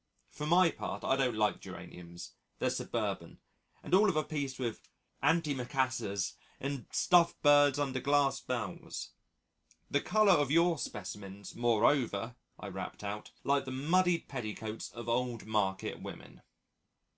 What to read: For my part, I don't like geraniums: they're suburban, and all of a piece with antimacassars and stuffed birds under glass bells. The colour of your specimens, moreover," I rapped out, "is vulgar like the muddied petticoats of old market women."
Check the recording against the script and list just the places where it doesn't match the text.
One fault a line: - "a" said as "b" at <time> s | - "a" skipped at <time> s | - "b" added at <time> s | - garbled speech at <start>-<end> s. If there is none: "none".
- "is vulgar" skipped at 13.3 s